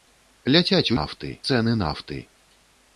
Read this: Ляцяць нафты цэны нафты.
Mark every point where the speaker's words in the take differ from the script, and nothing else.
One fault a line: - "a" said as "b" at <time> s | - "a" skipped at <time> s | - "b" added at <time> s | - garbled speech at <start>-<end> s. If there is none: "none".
none